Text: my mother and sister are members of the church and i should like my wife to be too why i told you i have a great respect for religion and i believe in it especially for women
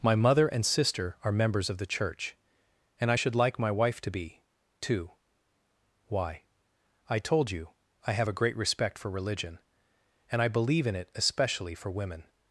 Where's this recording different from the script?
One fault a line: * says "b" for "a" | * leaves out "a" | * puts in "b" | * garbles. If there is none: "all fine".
all fine